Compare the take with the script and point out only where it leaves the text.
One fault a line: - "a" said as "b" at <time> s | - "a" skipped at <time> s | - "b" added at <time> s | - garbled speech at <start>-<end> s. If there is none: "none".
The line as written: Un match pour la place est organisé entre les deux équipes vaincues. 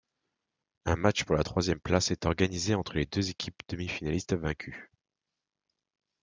- "troisième" added at 1.4 s
- "demi finalistes" added at 3.7 s